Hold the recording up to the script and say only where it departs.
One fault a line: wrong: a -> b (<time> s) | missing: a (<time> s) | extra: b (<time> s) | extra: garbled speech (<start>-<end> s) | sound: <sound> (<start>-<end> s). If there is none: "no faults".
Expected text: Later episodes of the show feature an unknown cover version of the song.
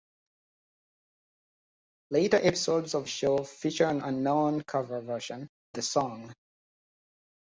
missing: the (3.1 s)
missing: of (5.5 s)